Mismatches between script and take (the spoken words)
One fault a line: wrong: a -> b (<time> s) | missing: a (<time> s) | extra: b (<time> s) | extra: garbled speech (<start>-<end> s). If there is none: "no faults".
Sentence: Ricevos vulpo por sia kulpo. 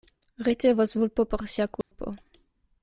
no faults